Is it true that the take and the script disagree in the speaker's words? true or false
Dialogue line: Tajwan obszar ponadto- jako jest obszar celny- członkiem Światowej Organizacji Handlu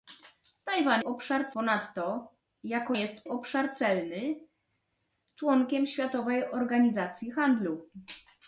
false